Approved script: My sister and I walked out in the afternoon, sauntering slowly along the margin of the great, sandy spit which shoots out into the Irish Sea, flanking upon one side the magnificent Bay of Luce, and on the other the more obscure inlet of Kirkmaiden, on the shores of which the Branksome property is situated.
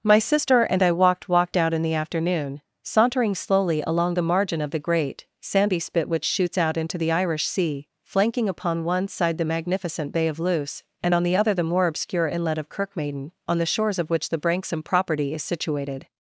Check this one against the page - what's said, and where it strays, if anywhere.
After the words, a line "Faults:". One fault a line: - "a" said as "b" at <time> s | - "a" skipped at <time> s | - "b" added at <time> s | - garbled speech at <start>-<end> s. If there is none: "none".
My sister and I walked walked out in the afternoon, sauntering slowly along the margin of the great, sandy spit which shoots out into the Irish Sea, flanking upon one side the magnificent Bay of Luce, and on the other the more obscure inlet of Kirkmaiden, on the shores of which the Branksome property is situated.
Faults:
- "walked" added at 1.3 s